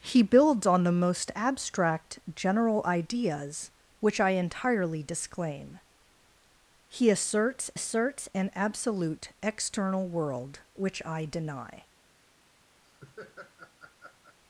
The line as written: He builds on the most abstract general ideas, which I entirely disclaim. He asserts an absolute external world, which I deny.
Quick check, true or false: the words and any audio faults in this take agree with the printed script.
false